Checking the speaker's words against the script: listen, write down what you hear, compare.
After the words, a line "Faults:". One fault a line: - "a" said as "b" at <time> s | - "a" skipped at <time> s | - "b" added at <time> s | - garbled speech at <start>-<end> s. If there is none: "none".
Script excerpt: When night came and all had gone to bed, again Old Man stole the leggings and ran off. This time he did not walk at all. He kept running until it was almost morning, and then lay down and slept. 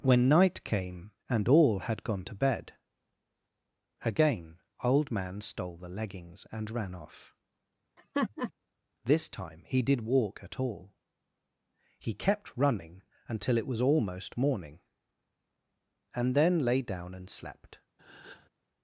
When night came and all had gone to bed, again Old Man stole the leggings and ran off. This time he did walk at all. He kept running until it was almost morning, and then lay down and slept.
Faults:
- "not" skipped at 10.0 s